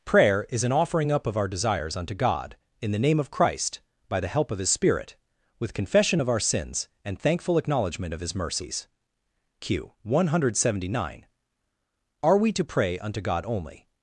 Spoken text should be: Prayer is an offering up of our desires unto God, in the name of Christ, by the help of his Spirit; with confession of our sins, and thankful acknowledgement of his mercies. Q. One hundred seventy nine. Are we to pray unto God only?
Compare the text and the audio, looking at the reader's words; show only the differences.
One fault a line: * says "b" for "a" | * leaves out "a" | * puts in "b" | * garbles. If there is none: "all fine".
all fine